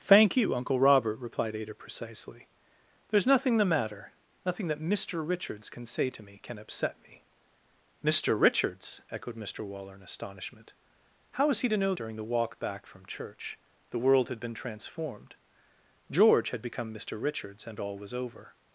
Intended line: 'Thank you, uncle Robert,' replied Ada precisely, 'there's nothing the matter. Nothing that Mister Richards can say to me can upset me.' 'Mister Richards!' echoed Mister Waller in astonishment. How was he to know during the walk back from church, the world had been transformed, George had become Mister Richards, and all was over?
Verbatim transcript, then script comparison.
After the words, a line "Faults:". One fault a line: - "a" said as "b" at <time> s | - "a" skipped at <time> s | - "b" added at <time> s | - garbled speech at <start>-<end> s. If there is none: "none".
'Thank you, uncle Robert,' replied Ada precisely, 'there's nothing the matter. Nothing that Mister Richards can say to me can upset me.' 'Mister Richards!' echoed Mister Waller in astonishment. How was he to know during the walk back from church, the world had been transformed, George had become Mister Richards, and all was over?
Faults:
none